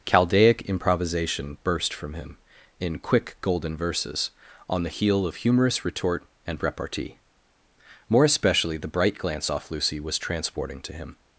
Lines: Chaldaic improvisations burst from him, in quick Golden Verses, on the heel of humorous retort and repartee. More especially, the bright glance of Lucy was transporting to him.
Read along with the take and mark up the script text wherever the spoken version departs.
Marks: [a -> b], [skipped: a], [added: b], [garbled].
Chaldaic [improvisations -> improvisation] burst from him, in quick Golden Verses, on the heel of humorous retort and repartee. More especially, the bright glance [of -> off] Lucy was transporting to him.